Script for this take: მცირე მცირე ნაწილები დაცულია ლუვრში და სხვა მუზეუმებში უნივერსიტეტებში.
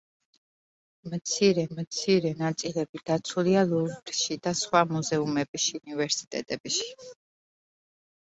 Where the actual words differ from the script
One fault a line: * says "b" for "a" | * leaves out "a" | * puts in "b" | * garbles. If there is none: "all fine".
all fine